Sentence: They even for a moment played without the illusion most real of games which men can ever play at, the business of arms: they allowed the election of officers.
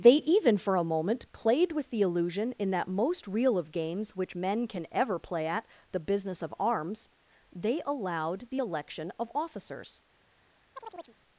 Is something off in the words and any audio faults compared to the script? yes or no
yes